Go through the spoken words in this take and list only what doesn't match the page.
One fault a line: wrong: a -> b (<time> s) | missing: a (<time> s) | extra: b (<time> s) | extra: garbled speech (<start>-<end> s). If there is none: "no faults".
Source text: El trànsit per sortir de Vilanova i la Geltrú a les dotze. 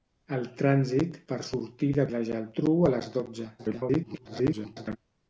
missing: Vilanova (2.1 s)
extra: garbled speech (3.6-5.0 s)